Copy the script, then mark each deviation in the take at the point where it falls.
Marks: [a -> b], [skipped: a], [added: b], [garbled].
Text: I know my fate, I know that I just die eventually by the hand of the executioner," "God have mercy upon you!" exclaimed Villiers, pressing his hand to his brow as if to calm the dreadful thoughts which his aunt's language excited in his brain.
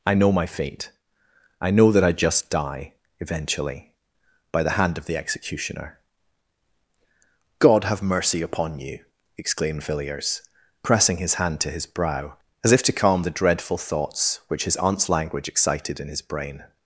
I know my fate, I know that I just die eventually by the hand of the executioner," "God have mercy upon you!" exclaimed Villiers, pressing his hand to his brow as if to calm the dreadful thoughts which his aunt's language excited in his brain.